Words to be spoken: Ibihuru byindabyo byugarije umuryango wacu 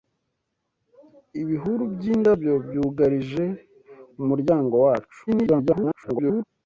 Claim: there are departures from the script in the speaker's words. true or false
true